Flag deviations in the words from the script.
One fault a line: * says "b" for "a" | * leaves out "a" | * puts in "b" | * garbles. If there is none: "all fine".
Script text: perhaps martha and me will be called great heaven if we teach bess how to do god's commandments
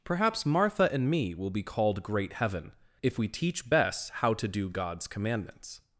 all fine